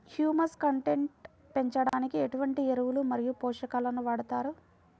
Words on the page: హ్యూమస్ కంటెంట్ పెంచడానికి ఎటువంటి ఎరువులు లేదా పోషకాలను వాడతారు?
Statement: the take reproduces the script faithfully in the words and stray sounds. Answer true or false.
false